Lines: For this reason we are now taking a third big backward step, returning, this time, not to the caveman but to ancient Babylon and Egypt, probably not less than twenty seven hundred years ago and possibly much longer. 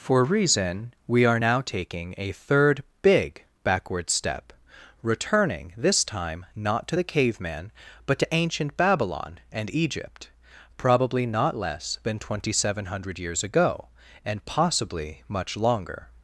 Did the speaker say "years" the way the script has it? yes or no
yes